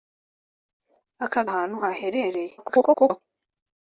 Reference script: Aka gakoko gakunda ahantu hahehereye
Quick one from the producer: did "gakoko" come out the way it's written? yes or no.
no